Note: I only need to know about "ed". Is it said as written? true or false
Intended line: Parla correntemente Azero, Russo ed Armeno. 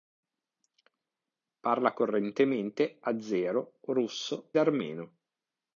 false